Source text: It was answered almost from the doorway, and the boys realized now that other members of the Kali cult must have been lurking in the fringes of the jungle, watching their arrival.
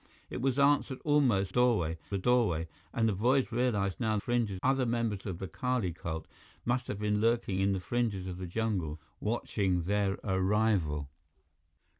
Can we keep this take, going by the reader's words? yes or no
no